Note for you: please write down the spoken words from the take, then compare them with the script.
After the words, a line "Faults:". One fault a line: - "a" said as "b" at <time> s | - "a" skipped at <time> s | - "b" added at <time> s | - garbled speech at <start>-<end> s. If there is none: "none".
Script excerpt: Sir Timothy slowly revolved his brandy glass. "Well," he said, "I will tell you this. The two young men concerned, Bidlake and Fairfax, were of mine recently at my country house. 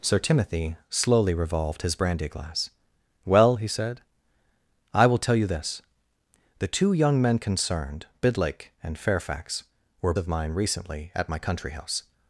Sir Timothy slowly revolved his brandy glass. "Well," he said, "I will tell you this. The two young men concerned, Bidlake and Fairfax, were of mine recently at my country house.
Faults:
none